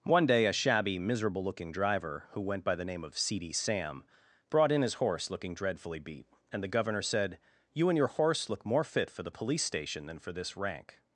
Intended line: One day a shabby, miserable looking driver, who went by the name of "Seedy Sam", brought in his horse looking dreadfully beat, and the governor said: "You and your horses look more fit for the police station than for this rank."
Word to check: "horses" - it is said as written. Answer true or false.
false